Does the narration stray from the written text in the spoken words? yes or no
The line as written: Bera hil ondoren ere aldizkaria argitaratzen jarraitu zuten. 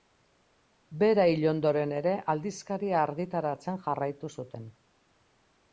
no